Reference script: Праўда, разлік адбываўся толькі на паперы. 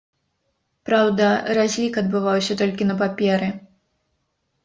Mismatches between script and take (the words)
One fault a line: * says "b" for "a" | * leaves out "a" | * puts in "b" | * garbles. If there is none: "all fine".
all fine